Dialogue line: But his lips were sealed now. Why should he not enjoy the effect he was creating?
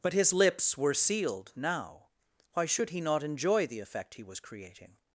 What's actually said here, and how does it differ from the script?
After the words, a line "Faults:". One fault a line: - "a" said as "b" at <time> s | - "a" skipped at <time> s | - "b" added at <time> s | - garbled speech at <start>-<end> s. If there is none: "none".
But his lips were sealed now. Why should he not enjoy the effect he was creating?
Faults:
none